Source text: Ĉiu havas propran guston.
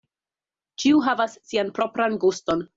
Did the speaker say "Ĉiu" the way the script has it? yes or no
yes